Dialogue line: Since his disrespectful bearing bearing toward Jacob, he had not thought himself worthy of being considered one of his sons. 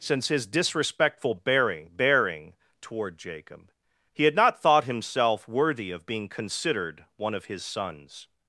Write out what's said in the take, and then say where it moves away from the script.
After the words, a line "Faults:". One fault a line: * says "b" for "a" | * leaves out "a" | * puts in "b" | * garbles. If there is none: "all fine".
Since his disrespectful bearing bearing toward Jacob, he had not thought himself worthy of being considered one of his sons.
Faults:
all fine